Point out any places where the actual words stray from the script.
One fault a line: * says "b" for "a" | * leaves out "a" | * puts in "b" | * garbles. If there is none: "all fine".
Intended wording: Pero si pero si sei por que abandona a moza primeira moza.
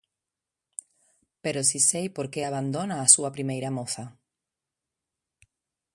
* leaves out "pero si"
* says "súa" for "moza"